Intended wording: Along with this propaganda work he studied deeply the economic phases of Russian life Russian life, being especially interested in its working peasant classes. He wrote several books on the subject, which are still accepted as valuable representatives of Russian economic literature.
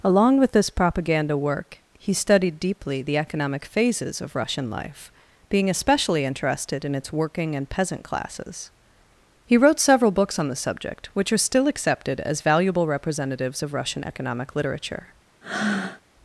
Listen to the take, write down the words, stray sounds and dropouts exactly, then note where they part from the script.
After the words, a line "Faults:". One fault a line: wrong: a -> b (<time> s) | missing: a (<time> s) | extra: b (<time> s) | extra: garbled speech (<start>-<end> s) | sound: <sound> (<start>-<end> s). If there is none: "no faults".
Along with this propaganda work he studied deeply the economic phases of Russian life, being especially interested in its working and peasant classes. He wrote several books on the subject, which are still accepted as valuable representatives of Russian economic literature.
Faults:
missing: Russian life (5.1 s)
extra: and (7.5 s)
sound: breath (15.4-16.0 s)